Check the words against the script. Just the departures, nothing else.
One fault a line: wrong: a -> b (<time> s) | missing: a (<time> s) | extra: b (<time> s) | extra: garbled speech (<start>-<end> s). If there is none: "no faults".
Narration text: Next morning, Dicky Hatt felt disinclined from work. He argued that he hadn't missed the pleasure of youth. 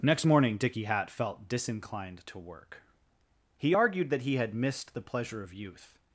wrong: from -> to (2.3 s)
wrong: hadn't -> had (4.3 s)